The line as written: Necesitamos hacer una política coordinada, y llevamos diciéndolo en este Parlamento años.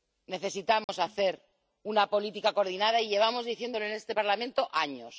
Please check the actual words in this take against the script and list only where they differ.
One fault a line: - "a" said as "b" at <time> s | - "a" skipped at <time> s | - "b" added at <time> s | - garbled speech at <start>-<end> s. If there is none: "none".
none